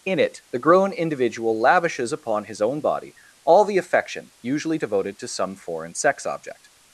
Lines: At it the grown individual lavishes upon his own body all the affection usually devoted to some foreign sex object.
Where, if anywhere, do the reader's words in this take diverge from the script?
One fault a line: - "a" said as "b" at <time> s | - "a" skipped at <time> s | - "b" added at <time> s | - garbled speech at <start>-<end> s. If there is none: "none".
- "At" said as "In" at 0.1 s